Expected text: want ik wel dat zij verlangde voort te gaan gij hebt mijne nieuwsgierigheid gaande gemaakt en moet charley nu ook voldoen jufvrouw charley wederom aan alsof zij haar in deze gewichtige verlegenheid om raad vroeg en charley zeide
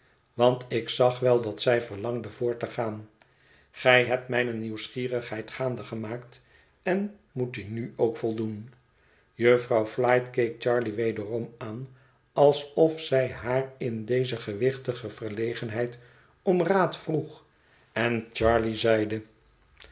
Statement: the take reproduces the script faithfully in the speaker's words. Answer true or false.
false